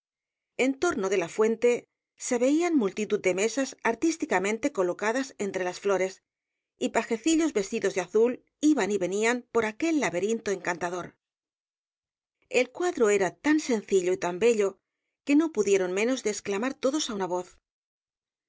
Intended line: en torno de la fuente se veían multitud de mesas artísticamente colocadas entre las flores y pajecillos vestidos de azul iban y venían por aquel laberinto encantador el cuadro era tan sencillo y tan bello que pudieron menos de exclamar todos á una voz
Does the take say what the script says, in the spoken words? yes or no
no